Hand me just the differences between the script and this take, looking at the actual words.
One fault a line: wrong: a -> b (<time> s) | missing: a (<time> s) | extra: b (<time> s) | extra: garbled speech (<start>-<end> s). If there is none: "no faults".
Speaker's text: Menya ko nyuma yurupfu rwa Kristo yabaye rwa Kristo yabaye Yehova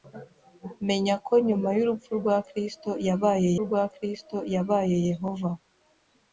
no faults